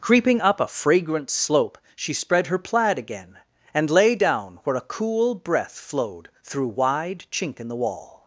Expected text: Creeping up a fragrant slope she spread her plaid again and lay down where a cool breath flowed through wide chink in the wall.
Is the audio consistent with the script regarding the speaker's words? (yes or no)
yes